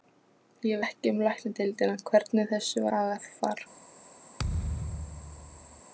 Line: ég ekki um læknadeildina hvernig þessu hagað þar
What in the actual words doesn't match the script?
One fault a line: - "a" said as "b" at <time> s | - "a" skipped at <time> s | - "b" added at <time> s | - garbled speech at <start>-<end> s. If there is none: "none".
none